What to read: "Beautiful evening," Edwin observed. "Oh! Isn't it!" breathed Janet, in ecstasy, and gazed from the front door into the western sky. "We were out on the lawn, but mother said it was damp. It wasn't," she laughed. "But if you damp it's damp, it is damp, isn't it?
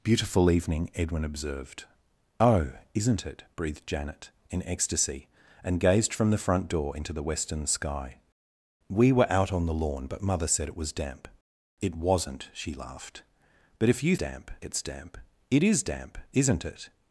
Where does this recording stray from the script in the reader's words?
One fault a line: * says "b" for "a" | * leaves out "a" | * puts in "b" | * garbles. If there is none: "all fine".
all fine